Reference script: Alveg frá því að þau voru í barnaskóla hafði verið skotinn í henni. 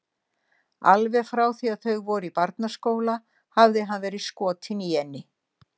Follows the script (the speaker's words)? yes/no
no